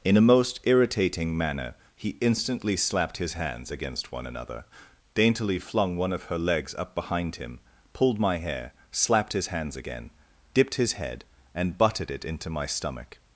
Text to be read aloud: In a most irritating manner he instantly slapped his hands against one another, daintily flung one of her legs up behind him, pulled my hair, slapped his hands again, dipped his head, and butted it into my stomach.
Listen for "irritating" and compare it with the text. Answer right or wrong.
right